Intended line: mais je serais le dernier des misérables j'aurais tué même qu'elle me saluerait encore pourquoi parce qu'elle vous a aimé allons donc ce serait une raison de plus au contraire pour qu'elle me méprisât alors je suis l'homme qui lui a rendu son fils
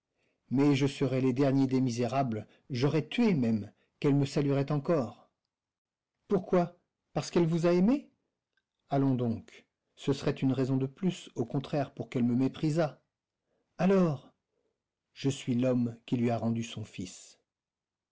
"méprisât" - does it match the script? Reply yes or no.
yes